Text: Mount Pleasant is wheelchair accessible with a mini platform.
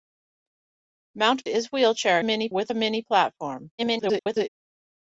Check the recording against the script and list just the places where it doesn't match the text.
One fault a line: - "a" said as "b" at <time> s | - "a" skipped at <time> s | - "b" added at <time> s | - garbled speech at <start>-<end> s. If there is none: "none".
- "Pleasant" skipped at 1.5 s
- "accessible" said as "mini" at 2.2 s
- garbled speech at 3.8-4.5 s